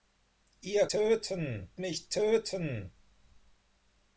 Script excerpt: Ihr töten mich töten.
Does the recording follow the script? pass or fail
pass